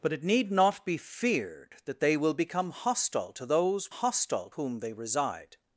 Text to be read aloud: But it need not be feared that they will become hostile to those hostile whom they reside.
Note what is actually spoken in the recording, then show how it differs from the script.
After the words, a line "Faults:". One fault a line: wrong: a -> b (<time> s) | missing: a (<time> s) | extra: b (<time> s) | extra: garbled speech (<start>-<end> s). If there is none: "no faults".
But it need not be feared that they will become hostile to those hostile whom they reside.
Faults:
no faults